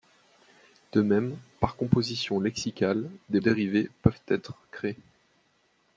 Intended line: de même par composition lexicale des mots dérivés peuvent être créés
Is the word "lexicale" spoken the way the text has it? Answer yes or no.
yes